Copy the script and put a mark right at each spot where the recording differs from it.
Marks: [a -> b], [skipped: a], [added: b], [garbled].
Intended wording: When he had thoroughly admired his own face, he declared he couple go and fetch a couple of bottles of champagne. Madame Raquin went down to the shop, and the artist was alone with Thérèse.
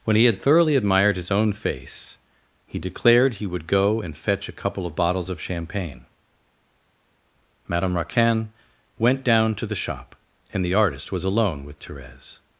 When he had thoroughly admired his own face, he declared he [couple -> would] go and fetch a couple of bottles of champagne. Madame Raquin went down to the shop, and the artist was alone with Thérèse.